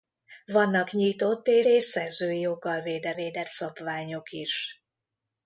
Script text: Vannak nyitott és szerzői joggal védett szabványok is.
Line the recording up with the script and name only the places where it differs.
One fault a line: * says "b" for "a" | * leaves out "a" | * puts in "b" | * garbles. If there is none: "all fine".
* puts in "és"
* puts in "védett"